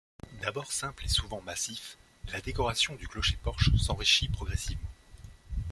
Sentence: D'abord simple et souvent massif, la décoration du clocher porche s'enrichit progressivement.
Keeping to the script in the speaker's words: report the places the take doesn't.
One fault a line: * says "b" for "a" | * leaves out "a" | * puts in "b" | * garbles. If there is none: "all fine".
all fine